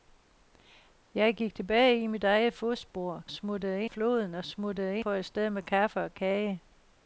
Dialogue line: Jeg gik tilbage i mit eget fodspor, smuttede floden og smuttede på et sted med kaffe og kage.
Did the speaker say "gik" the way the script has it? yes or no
yes